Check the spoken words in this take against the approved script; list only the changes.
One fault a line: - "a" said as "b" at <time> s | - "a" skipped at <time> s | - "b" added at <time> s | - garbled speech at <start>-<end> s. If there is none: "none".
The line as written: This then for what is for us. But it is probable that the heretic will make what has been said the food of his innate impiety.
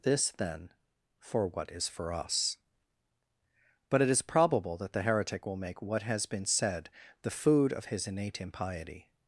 none